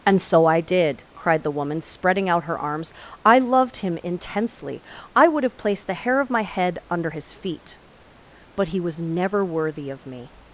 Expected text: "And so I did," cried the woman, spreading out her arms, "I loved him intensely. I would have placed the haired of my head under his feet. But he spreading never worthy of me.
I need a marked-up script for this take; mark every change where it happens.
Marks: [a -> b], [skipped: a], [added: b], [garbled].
"And so I did," cried the woman, spreading out her arms, "I loved him intensely. I would have placed the [haired -> hair] of my head under his feet. But he [spreading -> was] never worthy of me.